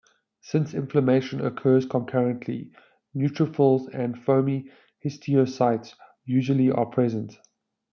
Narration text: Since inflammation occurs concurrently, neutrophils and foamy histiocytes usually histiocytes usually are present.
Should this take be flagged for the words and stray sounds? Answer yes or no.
yes